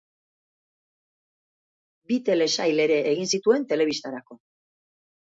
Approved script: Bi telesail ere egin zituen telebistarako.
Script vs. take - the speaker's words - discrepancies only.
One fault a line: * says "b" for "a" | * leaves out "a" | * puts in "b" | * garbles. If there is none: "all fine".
all fine